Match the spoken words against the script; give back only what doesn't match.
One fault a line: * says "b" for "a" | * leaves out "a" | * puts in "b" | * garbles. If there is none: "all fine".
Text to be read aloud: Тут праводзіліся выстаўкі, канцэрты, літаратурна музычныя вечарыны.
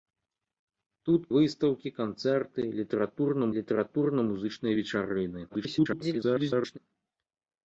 * leaves out "праводзіліся"
* puts in "літаратурна"
* garbles